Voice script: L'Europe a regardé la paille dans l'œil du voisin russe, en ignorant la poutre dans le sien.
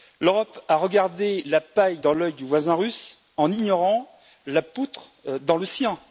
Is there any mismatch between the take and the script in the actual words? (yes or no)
no